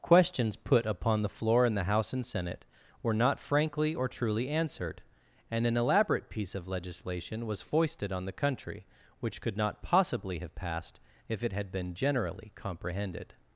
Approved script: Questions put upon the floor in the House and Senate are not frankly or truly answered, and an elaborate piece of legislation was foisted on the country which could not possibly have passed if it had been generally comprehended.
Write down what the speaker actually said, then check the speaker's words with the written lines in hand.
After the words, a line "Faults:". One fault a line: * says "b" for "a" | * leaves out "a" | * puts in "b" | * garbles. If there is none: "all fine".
Questions put upon the floor in the House and Senate were not frankly or truly answered, and an elaborate piece of legislation was foisted on the country which could not possibly have passed if it had been generally comprehended.
Faults:
* says "were" for "are"